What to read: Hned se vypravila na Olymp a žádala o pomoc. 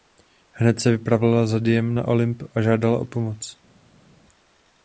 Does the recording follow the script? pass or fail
fail